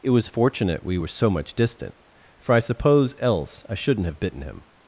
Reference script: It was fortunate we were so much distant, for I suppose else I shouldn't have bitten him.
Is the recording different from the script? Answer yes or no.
no